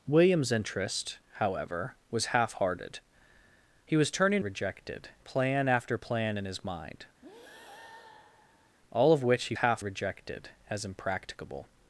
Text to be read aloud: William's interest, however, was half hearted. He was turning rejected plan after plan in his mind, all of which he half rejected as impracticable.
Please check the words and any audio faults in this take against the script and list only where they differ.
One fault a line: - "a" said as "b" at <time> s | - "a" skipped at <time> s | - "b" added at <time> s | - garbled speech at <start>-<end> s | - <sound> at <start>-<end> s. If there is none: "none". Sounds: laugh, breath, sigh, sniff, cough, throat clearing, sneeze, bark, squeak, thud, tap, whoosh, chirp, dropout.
- breath at 7.2-8.8 s